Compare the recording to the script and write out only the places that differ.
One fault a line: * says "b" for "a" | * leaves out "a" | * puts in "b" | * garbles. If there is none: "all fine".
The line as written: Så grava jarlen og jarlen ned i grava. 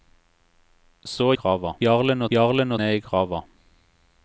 all fine